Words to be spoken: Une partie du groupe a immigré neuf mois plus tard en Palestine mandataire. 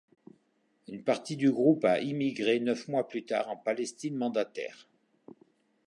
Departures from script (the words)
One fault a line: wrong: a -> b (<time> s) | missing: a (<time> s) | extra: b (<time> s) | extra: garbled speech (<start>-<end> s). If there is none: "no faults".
no faults